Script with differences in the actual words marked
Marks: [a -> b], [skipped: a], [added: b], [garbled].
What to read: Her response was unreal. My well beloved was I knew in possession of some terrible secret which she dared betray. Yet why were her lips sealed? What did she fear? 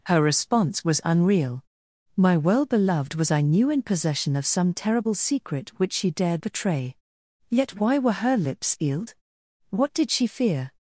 Her response was unreal. My well beloved was I knew in possession of some terrible secret which she dared betray. Yet why were her lips sealed? What did she fear?